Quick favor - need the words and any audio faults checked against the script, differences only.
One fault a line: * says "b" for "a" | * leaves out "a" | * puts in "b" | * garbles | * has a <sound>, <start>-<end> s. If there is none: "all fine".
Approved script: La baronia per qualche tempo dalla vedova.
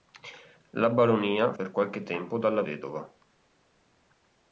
all fine